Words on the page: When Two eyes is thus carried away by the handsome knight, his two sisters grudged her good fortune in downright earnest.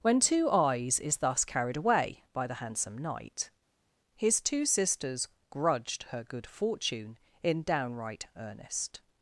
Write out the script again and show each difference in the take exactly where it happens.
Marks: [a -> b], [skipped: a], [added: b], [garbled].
When Two eyes is thus carried away by the handsome knight, his two sisters grudged her good fortune in downright earnest.